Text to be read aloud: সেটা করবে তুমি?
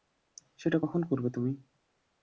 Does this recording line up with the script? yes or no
no